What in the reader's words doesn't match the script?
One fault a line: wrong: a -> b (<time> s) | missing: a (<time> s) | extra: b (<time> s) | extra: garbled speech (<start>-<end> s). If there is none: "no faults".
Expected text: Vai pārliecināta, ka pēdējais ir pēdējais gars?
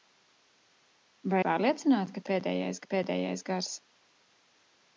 no faults